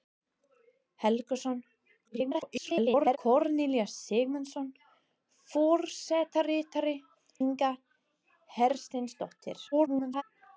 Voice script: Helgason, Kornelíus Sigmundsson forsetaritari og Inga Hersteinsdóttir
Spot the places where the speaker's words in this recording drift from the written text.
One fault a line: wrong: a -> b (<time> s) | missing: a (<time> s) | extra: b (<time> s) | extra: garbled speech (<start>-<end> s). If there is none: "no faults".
extra: garbled speech (2.0-3.2 s)
missing: og (7.0 s)
extra: garbled speech (9.7-10.2 s)